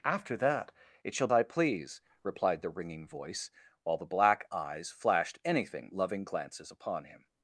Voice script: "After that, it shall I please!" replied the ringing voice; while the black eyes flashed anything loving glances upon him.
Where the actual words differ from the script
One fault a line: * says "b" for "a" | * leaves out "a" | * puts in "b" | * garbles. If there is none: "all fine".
all fine